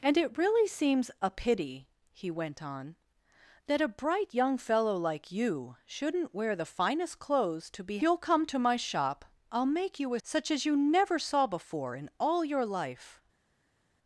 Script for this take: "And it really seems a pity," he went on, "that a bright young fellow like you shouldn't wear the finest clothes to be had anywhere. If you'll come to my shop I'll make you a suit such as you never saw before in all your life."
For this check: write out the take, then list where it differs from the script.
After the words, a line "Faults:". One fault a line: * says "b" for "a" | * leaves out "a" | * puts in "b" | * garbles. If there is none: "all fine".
"And it really seems a pity," he went on, "that a bright young fellow like you shouldn't wear the finest clothes to be you'll come to my shop I'll make you a such as you never saw before in all your life."
Faults:
* leaves out "had anywhere If"
* leaves out "suit"